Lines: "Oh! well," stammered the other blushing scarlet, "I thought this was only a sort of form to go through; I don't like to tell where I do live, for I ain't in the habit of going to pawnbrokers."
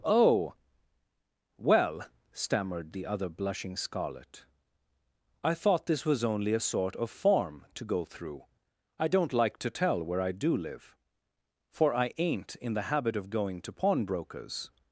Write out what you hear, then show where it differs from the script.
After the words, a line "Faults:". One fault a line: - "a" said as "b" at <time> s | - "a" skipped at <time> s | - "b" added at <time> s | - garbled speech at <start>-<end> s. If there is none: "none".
"Oh! well," stammered the other blushing scarlet, "I thought this was only a sort of form to go through; I don't like to tell where I do live, for I ain't in the habit of going to pawnbrokers."
Faults:
none